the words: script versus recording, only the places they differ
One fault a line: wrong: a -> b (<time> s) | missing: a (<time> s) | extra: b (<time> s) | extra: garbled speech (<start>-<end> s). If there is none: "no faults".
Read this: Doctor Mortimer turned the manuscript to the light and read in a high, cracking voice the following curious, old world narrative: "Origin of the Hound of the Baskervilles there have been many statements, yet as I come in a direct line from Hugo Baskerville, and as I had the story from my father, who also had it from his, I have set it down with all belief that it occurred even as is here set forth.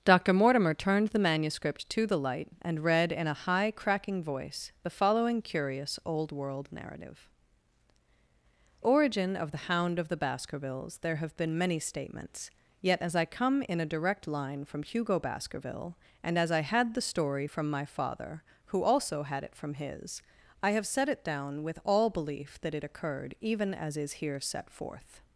no faults